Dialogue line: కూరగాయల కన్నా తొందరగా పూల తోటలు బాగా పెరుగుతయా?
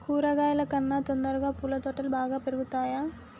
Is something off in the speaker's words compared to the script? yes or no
no